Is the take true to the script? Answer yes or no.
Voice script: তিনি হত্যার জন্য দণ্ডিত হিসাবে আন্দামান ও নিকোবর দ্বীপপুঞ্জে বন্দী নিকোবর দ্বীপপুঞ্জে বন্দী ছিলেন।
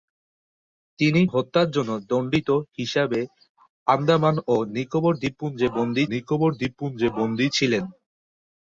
yes